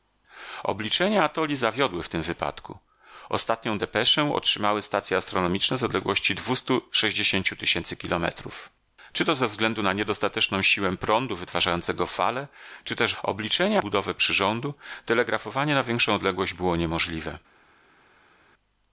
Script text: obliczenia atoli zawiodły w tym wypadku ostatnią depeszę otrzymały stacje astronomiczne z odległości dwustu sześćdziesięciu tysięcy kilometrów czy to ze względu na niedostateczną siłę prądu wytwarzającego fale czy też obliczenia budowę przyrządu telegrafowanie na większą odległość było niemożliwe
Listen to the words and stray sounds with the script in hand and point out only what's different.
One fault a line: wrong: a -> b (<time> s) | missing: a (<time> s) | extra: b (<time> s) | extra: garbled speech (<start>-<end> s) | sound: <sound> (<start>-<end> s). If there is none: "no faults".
no faults